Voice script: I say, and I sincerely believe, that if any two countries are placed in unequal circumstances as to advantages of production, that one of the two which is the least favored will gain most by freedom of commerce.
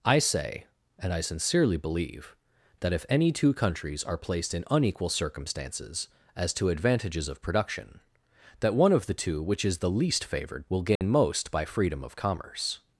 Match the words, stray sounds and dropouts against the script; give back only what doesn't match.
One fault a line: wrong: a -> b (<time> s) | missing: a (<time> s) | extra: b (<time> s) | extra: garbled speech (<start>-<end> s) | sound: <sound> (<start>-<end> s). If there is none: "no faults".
sound: dropout (11.0-11.0 s)